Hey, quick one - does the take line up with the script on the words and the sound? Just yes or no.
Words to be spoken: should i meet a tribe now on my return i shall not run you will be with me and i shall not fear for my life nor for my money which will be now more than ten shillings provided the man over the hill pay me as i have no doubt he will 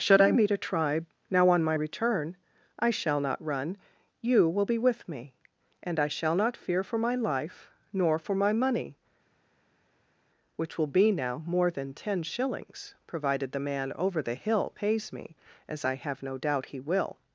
no